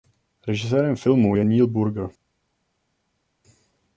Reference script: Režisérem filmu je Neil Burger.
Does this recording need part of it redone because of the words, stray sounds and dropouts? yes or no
no